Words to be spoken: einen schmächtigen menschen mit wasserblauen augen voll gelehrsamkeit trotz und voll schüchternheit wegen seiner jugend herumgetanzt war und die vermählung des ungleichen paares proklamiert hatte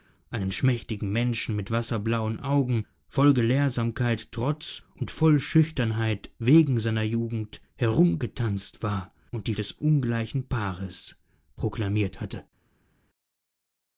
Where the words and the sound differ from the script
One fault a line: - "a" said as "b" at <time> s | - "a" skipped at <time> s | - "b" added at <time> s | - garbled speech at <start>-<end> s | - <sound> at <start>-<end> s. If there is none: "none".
- "vermählung" skipped at 9.5 s